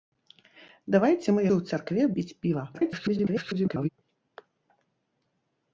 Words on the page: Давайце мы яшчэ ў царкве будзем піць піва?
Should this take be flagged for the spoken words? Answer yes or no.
yes